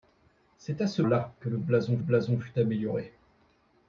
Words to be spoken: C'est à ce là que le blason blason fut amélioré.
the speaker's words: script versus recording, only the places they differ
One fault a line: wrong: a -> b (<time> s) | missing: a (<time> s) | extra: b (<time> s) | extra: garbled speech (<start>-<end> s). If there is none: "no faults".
no faults